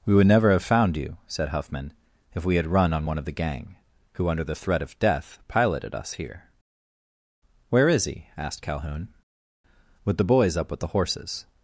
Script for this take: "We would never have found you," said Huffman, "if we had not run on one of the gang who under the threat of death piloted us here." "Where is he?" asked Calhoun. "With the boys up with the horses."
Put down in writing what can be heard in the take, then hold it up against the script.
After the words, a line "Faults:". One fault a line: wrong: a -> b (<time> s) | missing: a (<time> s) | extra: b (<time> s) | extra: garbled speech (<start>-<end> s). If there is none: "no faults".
"We would never have found you," said Huffman, "if we had run on one of the gang who under the threat of death piloted us here." "Where is he?" asked Calhoun. "With the boys up with the horses."
Faults:
missing: not (2.7 s)